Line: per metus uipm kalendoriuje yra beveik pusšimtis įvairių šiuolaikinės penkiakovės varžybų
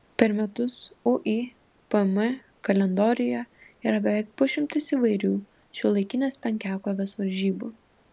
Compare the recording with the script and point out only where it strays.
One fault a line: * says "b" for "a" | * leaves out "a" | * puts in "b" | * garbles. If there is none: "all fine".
all fine